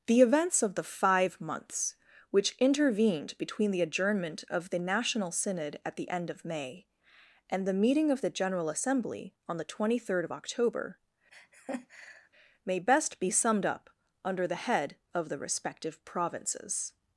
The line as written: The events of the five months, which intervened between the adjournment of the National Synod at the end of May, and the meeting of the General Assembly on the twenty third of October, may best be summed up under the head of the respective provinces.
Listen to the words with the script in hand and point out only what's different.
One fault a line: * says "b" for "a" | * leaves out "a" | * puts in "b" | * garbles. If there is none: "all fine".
all fine